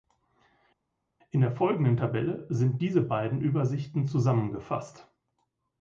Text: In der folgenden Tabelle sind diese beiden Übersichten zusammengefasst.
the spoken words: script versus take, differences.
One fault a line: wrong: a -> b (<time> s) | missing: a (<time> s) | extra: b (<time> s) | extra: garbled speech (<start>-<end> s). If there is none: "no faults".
no faults